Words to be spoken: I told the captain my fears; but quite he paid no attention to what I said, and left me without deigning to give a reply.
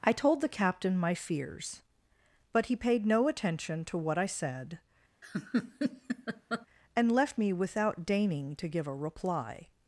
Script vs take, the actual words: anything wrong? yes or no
yes